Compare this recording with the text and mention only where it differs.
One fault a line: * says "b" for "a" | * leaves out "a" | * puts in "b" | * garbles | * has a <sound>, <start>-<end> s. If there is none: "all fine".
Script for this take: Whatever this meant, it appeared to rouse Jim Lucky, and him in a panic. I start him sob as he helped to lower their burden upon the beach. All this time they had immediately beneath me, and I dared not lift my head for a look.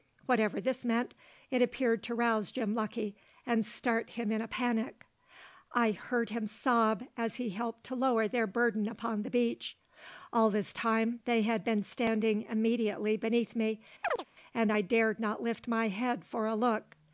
* puts in "start"
* says "heard" for "start"
* puts in "been standing"
* has a chirp, 14.0-14.3 s